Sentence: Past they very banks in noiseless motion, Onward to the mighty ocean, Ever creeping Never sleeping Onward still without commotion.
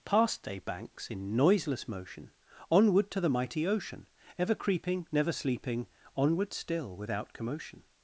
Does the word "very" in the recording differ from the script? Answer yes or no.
yes